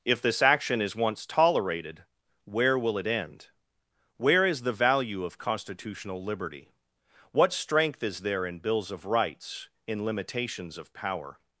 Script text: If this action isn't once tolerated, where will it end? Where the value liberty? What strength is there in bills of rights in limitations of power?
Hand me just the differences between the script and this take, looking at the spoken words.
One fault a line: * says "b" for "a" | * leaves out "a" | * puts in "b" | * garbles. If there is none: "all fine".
* says "is" for "isn't"
* puts in "is"
* puts in "of constitutional"